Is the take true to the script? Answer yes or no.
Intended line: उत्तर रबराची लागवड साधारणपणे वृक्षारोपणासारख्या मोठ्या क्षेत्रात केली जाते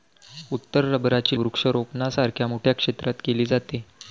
no